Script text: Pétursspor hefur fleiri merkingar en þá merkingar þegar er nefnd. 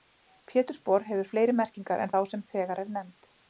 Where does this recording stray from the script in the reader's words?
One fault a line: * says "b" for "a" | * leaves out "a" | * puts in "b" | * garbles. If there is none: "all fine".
* says "sem" for "merkingar"